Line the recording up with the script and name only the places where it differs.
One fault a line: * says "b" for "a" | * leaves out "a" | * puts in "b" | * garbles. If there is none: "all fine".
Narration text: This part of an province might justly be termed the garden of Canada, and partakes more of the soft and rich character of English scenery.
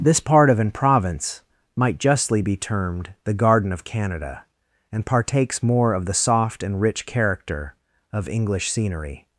all fine